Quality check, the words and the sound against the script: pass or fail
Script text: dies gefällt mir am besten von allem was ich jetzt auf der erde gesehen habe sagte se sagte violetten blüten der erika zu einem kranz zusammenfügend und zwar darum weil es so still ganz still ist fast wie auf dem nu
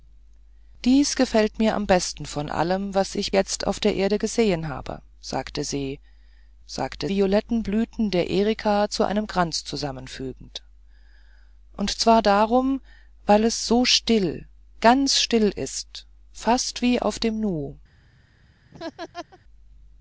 fail